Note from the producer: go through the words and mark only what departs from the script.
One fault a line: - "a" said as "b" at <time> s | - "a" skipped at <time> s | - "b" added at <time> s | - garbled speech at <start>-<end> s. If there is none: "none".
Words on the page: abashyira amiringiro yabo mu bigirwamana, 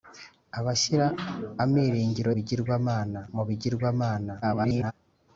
- "yabo" said as "bigirwamana" at 2.3 s
- garbled speech at 4.4-4.9 s